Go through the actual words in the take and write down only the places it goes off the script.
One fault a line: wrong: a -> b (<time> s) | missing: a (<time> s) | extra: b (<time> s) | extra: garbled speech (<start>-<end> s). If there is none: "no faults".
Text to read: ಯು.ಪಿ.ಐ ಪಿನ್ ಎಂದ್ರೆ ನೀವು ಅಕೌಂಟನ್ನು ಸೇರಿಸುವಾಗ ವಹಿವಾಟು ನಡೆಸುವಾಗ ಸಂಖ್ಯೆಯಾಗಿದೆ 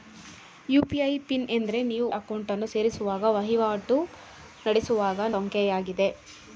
no faults